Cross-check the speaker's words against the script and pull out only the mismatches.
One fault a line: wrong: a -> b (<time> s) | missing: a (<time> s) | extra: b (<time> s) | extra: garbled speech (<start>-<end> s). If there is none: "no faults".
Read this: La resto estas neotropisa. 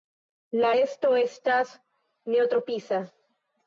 no faults